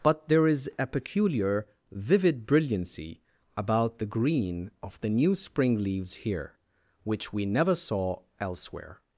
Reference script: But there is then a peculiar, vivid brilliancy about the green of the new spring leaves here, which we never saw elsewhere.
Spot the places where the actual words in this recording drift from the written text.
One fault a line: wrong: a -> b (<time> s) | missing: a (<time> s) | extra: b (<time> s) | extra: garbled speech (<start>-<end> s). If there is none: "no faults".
missing: then (0.7 s)